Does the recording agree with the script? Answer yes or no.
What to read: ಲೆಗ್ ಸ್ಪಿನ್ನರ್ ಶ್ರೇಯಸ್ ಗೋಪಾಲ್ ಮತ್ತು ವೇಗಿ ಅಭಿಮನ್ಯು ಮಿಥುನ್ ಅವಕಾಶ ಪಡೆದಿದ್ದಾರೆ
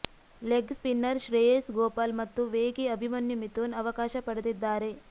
yes